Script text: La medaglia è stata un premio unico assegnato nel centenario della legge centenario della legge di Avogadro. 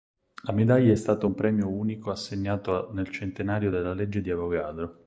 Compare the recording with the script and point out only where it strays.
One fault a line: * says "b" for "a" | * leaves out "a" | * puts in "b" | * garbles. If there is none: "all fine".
* leaves out "centenario della legge"